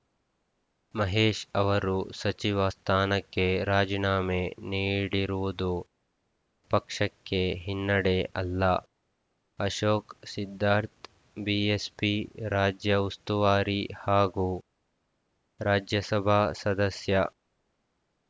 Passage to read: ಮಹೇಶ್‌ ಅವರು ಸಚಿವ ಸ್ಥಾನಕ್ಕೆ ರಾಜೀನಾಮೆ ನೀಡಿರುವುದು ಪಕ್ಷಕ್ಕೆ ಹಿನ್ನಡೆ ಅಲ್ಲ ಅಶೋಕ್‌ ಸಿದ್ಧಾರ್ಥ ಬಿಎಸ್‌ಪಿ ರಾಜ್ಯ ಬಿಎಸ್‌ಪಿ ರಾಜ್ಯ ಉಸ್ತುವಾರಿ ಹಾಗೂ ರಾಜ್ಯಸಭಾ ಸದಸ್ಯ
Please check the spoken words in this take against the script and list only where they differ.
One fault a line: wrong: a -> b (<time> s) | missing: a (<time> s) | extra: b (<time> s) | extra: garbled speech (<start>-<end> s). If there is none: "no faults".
missing: ಬಿಎಸ್‌ಪಿ ರಾಜ್ಯ (13.0 s)